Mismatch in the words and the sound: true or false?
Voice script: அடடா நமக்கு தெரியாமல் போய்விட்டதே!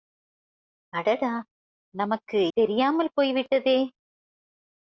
false